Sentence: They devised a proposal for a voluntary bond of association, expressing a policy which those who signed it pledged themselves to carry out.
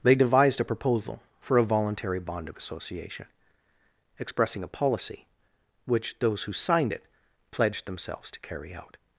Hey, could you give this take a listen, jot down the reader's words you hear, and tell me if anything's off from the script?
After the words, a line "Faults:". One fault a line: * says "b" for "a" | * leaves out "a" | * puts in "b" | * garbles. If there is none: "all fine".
They devised a proposal for a voluntary bond of association, expressing a policy which those who signed it pledged themselves to carry out.
Faults:
all fine